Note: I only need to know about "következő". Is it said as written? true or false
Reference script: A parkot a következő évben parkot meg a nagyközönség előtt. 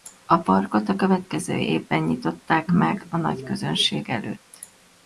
true